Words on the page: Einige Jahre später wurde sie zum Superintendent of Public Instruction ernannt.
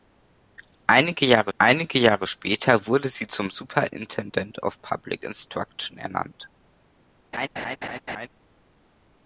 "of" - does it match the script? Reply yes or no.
yes